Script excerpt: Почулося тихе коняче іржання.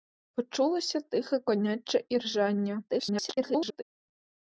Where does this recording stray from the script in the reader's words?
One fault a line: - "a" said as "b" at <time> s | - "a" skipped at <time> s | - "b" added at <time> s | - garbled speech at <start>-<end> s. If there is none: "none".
- garbled speech at 2.9-3.8 s